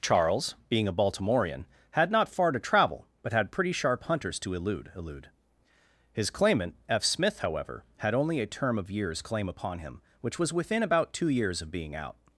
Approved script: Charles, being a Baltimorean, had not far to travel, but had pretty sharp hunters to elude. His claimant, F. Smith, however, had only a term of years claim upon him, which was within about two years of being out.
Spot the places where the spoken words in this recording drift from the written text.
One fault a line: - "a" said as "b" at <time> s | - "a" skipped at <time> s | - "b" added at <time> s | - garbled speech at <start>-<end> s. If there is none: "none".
- "elude" added at 5.0 s